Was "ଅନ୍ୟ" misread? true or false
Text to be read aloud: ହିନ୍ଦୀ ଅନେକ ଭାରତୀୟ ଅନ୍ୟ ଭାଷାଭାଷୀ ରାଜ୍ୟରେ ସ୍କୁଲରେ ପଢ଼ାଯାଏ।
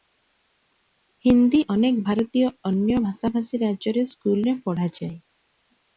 false